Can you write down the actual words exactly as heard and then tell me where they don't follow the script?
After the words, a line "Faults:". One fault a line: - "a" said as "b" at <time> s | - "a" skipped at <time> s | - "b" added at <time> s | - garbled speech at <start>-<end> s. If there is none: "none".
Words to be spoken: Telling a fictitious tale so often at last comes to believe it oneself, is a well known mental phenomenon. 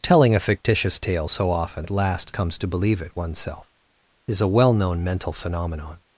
Telling a fictitious tale so often at last comes to believe it oneself, is a well known mental phenomenon.
Faults:
none